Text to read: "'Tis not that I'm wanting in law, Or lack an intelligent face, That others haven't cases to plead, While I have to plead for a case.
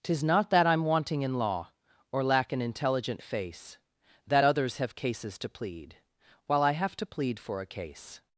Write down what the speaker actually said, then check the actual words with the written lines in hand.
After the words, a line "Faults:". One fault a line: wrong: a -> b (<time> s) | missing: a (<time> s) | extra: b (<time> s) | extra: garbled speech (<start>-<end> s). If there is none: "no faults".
"'Tis not that I'm wanting in law, Or lack an intelligent face, That others have cases to plead, While I have to plead for a case.
Faults:
wrong: haven't -> have (4.8 s)